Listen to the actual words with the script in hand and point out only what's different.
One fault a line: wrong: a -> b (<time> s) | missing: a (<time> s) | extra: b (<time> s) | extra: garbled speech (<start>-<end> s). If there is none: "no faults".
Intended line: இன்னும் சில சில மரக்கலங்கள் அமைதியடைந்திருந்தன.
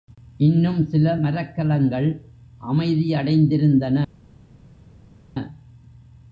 missing: சில (1.1 s)